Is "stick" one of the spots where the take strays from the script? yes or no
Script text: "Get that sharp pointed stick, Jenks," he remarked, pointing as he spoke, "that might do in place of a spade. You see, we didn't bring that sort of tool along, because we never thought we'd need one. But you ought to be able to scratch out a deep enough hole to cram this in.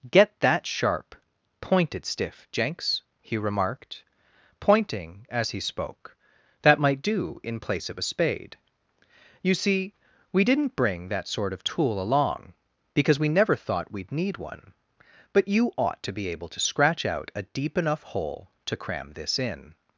yes